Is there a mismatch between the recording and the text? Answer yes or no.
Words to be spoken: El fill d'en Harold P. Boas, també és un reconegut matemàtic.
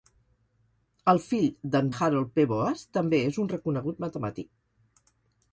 no